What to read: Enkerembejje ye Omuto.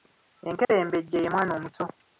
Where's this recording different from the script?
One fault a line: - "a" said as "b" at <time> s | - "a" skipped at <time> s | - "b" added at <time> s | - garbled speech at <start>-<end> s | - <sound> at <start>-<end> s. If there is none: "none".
- dropout at 0.6-0.7 s
- "Mwana" added at 1.3 s